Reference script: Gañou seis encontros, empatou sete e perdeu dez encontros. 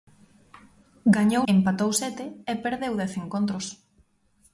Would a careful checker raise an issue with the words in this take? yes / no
yes